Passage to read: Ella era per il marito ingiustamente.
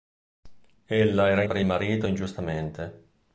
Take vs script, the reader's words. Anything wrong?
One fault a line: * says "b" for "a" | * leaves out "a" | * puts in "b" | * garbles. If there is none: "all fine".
all fine